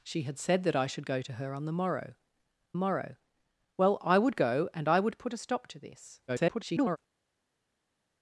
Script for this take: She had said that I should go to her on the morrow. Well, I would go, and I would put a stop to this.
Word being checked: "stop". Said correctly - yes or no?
yes